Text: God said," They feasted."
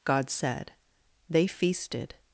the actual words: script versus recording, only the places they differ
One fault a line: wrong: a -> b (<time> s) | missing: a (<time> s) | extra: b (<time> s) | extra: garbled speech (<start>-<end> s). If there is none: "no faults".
no faults